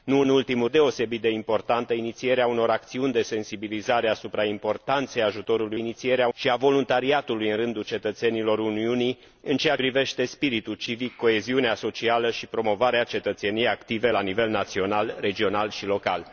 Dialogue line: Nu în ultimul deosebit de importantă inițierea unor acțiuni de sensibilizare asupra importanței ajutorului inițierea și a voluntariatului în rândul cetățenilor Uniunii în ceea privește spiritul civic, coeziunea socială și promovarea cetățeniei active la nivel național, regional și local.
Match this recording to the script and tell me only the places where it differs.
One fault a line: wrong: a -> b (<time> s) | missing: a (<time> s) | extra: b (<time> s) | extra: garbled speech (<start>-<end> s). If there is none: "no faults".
no faults